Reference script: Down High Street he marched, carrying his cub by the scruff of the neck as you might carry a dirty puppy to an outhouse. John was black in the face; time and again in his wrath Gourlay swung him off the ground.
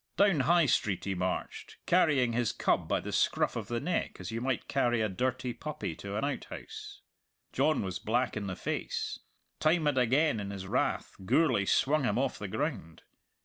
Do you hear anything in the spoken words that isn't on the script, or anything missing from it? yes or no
no